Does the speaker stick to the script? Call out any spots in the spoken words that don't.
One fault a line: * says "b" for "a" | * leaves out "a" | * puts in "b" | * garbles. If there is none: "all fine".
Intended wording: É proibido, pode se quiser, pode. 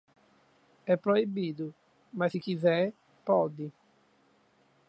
* says "mas" for "pode"